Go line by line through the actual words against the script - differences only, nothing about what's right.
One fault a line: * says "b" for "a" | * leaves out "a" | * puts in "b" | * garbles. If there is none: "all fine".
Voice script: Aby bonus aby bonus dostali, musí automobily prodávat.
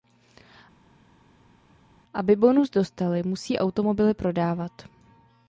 * leaves out "aby bonus"